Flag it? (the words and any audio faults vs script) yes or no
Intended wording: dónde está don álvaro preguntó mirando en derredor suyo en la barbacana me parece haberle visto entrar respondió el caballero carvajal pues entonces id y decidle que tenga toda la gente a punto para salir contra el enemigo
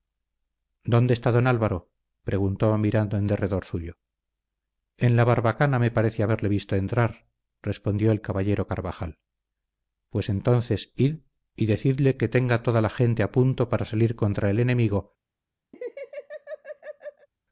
yes